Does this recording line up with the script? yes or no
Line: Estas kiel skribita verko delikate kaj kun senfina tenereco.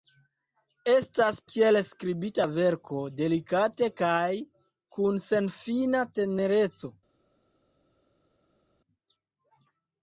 yes